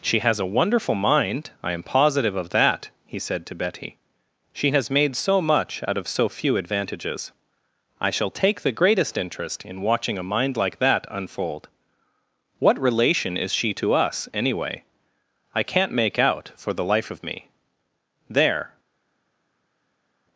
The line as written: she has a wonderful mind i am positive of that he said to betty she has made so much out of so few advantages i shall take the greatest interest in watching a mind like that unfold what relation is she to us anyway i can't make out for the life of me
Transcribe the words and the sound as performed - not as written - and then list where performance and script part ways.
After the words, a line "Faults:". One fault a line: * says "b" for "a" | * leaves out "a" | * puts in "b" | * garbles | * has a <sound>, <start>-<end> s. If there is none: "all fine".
she has a wonderful mind i am positive of that he said to betty she has made so much out of so few advantages i shall take the greatest interest in watching a mind like that unfold what relation is she to us anyway i can't make out for the life of me there
Faults:
* puts in "there"